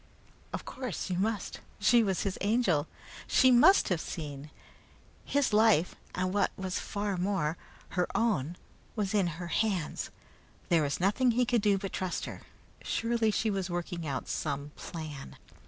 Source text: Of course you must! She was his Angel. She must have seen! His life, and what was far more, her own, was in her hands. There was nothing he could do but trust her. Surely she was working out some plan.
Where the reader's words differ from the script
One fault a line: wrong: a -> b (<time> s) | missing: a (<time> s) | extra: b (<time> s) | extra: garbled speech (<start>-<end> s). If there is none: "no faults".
no faults